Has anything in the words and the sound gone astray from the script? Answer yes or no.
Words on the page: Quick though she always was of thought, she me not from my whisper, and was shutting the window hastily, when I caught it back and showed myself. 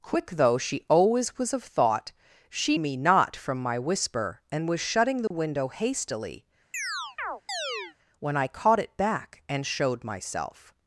yes